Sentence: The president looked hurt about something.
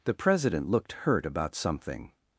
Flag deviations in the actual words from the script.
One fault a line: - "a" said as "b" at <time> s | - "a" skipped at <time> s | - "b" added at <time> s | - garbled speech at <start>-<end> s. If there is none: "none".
none